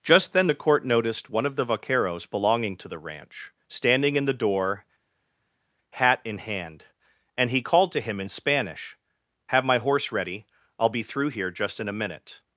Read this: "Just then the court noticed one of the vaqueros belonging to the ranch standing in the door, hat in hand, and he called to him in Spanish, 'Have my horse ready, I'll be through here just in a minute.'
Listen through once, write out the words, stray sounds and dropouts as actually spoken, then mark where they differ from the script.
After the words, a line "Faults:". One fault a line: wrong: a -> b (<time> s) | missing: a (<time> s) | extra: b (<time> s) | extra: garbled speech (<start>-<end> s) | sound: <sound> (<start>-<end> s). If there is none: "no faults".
"Just then the court noticed one of the vaqueros belonging to the ranch standing in the door, hat in hand, and he called to him in Spanish, 'Have my horse ready, I'll be through here just in a minute.'
Faults:
no faults